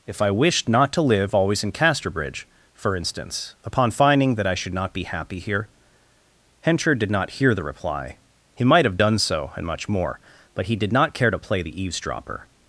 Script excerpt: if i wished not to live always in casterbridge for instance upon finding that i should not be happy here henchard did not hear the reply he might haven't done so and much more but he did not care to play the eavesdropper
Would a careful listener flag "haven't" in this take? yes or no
yes